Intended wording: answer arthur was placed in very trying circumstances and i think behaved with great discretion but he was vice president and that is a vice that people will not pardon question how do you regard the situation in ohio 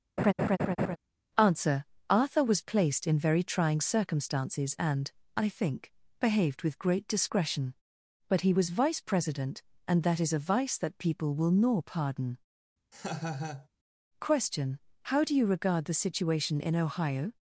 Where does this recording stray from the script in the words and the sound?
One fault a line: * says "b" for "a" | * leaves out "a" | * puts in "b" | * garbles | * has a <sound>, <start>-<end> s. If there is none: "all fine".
* has a laugh, 0.2-1.0 s
* says "nor" for "not"
* has a laugh, 12.9-13.7 s